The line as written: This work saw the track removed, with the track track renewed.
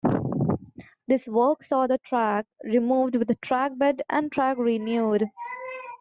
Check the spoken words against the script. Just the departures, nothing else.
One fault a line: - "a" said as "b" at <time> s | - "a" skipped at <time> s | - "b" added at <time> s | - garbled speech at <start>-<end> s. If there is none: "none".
- "bed and" added at 3.8 s